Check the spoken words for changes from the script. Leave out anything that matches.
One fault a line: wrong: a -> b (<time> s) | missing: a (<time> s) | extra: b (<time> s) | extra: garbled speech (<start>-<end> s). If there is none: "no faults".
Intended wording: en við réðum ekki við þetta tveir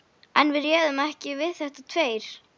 no faults